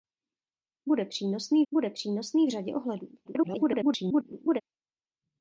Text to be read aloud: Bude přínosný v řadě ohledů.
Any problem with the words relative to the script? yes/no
yes